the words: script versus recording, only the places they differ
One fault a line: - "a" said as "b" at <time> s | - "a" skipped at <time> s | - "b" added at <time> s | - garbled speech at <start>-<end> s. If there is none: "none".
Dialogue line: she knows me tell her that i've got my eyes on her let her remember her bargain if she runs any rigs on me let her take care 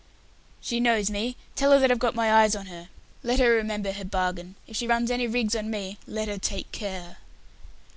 none